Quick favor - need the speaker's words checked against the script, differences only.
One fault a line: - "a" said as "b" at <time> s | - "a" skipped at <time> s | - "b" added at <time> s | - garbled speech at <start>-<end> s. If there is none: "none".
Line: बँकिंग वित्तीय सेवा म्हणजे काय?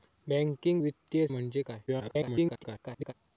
- "सेवा" skipped at 1.3 s
- garbled speech at 1.9-3.1 s